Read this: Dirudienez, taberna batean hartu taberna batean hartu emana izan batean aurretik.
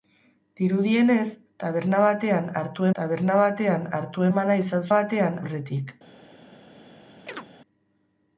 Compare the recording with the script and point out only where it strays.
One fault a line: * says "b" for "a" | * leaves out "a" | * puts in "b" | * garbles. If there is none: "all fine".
all fine